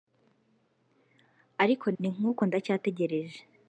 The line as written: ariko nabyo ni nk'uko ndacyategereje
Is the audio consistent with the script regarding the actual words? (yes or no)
no